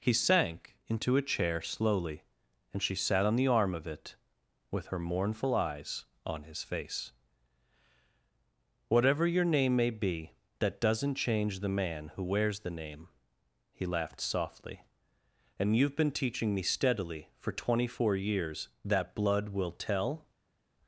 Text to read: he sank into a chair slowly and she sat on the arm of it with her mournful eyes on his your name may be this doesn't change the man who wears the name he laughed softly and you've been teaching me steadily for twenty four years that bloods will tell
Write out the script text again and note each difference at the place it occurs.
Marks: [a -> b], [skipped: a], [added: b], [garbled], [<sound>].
he sank into a chair slowly and she sat on the arm of it with her mournful eyes on his [added: face whatever] your name may be [this -> that] doesn't change the man who wears the name he laughed softly and you've been teaching me steadily for twenty four years that [bloods -> blood] will tell